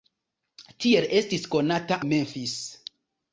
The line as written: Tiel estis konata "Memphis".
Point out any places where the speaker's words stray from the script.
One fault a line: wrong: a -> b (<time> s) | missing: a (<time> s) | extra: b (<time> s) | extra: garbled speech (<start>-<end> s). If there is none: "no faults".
no faults